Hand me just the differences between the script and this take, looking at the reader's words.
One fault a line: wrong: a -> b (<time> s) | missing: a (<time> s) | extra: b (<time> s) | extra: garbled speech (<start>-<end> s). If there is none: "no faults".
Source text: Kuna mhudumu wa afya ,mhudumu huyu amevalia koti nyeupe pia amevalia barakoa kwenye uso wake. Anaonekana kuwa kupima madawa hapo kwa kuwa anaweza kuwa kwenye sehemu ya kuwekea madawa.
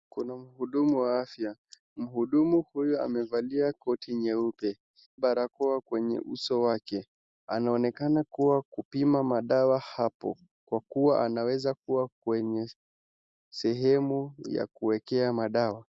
missing: pia amevalia (4.8 s)